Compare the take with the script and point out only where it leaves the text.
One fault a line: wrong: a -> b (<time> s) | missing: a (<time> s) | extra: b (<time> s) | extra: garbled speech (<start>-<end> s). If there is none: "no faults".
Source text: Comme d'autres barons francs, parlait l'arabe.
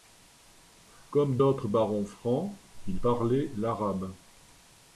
extra: il (2.9 s)